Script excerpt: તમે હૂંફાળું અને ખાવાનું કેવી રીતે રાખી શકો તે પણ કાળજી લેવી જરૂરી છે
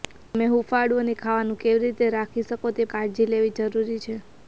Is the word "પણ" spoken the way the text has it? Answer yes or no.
no